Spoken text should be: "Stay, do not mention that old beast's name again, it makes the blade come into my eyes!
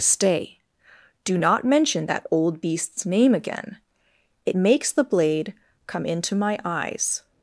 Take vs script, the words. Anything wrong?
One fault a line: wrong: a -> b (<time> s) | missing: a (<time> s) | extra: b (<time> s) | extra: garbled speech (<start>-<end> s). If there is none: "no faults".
no faults